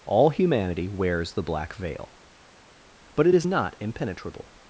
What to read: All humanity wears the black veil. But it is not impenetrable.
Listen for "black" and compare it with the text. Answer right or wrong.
right